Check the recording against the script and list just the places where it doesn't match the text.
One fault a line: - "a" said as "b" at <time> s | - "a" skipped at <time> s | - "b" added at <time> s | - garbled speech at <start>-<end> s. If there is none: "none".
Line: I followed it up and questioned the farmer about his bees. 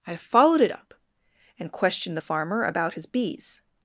none